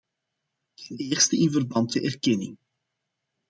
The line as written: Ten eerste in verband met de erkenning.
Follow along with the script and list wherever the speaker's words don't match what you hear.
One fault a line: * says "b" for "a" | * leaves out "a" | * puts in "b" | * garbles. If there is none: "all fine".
* leaves out "met"